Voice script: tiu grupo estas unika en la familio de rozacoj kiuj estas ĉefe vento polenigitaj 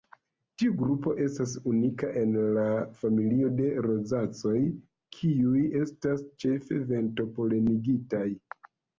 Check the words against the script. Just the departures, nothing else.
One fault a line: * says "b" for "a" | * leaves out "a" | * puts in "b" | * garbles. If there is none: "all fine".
all fine